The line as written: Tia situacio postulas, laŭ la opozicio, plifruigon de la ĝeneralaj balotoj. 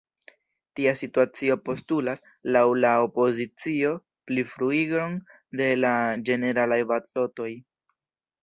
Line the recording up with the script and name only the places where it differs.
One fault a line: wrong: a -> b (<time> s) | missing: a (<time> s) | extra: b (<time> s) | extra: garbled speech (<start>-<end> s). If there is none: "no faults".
no faults